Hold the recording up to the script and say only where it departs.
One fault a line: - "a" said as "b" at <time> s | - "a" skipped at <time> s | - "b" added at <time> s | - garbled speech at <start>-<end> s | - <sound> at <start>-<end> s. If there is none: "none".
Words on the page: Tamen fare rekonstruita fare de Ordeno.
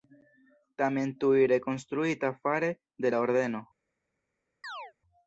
- "fare" said as "tuj" at 1.2 s
- "la" added at 3.1 s
- chirp at 4.6-4.9 s